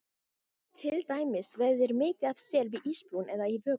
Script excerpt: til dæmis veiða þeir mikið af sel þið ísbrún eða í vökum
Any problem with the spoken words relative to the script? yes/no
yes